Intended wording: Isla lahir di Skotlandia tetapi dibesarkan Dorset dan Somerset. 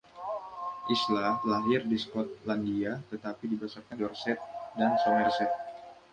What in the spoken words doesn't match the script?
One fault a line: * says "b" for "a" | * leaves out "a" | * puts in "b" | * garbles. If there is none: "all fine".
all fine